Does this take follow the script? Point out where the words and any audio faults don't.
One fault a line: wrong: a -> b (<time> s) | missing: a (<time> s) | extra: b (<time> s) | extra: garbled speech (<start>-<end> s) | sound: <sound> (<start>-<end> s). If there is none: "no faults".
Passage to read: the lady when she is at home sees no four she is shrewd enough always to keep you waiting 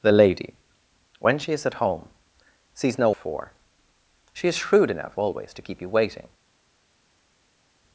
no faults